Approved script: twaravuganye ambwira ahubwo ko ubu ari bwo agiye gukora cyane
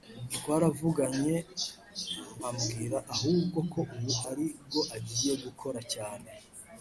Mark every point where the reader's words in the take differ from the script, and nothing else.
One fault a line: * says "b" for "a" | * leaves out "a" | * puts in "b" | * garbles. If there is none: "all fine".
all fine